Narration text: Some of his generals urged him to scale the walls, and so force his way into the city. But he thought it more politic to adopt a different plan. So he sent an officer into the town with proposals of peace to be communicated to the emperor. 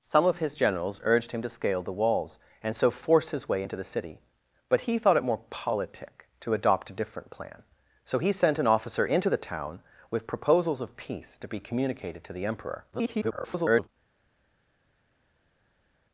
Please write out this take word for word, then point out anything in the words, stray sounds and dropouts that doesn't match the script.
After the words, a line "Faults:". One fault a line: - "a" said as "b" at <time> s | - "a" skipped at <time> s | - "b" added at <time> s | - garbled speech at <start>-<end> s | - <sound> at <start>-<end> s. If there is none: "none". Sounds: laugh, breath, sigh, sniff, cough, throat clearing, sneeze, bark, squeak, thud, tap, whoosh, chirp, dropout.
Some of his generals urged him to scale the walls, and so force his way into the city. But he thought it more politic to adopt a different plan. So he sent an officer into the town with proposals of peace to be communicated to the emperor. [garbled]
Faults:
- garbled speech at 12.9-13.9 s